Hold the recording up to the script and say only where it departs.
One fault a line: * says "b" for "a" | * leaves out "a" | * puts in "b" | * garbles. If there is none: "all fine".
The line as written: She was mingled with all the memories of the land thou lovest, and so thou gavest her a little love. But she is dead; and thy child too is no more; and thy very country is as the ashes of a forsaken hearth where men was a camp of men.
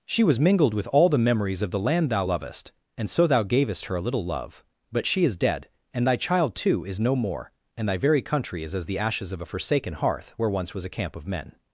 * says "once" for "men"